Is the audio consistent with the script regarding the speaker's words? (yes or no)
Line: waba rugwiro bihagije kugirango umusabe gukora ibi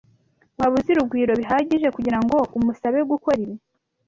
no